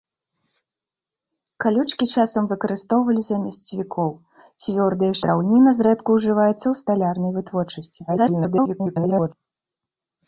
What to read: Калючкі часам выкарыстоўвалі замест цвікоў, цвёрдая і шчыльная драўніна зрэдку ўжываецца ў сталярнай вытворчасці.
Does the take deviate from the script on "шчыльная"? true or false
true